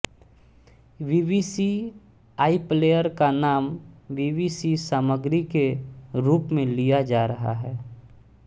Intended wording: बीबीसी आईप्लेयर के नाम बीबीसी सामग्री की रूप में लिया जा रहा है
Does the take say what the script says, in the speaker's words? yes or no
no